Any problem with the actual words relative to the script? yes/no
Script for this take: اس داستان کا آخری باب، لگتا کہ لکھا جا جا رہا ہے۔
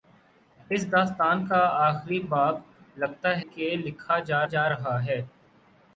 no